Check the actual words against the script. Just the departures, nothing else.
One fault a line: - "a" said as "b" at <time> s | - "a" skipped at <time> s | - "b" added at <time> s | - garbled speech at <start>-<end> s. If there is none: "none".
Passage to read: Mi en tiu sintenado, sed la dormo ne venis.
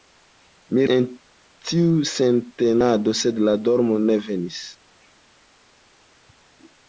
none